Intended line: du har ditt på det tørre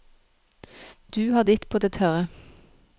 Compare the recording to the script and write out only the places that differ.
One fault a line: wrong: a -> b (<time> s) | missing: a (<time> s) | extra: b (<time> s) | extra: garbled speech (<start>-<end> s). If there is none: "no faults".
no faults